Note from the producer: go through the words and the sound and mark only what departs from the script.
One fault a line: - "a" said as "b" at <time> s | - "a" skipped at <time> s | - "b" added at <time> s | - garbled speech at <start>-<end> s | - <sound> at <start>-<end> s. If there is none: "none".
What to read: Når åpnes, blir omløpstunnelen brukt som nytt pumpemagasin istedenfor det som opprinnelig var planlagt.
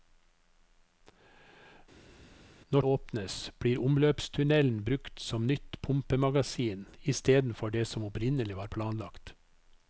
none